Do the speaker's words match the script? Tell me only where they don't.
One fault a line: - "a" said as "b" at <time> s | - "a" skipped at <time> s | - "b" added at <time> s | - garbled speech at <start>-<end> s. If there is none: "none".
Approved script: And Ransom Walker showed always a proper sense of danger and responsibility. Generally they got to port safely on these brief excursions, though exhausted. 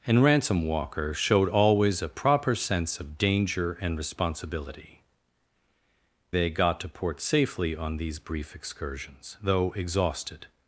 - "Generally" skipped at 5.0 s